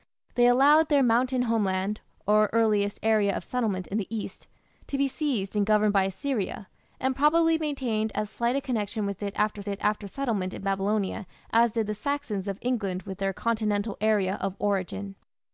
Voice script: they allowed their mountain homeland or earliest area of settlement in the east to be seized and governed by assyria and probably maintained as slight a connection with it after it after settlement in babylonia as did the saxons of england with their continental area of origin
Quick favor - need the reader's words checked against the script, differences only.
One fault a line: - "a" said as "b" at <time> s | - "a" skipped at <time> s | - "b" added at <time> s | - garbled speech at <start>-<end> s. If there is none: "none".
none